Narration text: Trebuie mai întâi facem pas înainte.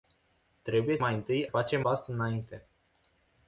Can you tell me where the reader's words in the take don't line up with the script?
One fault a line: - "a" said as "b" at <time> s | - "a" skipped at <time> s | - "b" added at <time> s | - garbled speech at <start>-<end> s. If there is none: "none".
none